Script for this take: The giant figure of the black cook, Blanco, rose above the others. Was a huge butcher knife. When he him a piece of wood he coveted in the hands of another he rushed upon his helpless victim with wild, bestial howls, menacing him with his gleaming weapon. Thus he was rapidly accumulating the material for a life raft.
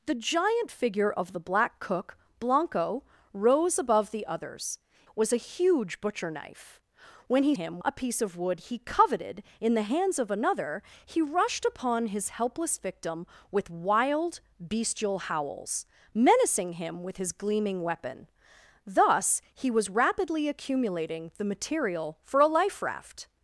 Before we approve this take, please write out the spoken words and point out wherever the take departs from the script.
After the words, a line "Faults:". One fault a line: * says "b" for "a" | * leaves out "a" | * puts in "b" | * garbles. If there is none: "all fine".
The giant figure of the black cook, Blanco, rose above the others. Was a huge butcher knife. When he him a piece of wood he coveted in the hands of another he rushed upon his helpless victim with wild, bestial howls, menacing him with his gleaming weapon. Thus he was rapidly accumulating the material for a life raft.
Faults:
all fine